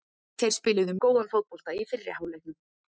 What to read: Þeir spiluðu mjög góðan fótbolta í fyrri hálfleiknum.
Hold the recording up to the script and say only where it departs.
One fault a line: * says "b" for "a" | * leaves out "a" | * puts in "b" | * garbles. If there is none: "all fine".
* leaves out "mjög"